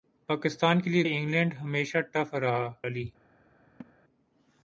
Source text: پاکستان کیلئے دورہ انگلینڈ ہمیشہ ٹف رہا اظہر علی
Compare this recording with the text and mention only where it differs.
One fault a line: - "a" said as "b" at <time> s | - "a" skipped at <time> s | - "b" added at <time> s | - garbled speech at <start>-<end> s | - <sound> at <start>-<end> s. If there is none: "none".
- "دورہ" skipped at 1.0 s
- "اظہر" skipped at 2.6 s
- laugh at 3.8-3.9 s